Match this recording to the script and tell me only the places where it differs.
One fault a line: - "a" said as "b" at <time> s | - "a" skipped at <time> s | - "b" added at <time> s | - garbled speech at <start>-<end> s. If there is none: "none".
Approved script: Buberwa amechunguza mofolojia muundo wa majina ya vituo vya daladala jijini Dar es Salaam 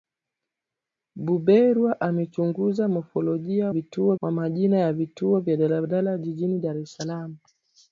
- "muundo" said as "vituo" at 3.7 s